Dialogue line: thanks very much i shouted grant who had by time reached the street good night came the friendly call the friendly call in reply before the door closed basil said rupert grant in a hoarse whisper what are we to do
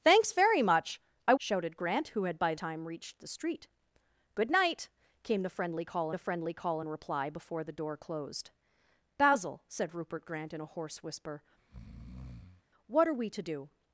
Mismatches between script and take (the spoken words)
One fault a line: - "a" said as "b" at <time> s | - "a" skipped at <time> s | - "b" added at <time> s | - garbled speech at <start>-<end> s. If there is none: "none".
none